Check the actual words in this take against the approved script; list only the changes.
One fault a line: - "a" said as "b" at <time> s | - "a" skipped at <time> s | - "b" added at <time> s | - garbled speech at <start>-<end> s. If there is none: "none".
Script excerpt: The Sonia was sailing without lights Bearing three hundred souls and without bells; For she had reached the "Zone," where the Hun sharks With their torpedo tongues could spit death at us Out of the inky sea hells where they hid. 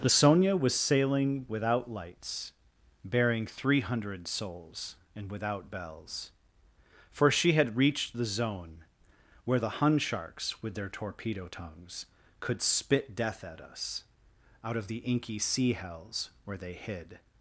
none